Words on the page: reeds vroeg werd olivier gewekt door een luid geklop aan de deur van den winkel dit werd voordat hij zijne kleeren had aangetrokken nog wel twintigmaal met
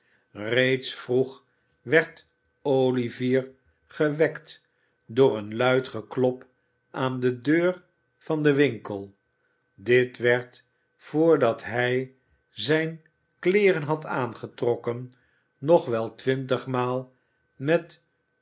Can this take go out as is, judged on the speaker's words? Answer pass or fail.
pass